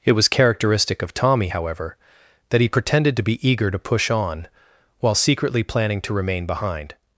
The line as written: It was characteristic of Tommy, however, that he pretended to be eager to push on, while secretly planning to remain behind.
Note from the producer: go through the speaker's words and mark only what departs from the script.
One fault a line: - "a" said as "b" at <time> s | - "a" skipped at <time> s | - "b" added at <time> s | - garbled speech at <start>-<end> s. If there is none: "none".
none